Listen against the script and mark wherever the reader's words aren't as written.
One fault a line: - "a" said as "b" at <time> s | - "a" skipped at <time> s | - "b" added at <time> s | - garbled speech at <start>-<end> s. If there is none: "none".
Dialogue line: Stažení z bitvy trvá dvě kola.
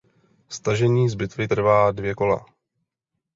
none